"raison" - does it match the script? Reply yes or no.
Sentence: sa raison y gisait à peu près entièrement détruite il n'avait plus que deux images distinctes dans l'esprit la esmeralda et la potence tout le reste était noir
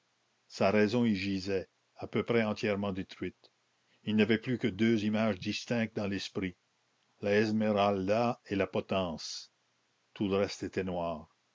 yes